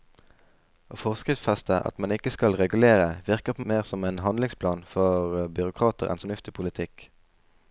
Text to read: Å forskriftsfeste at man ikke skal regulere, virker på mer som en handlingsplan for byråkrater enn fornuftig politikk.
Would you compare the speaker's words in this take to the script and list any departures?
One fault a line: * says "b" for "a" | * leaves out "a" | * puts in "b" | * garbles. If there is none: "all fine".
all fine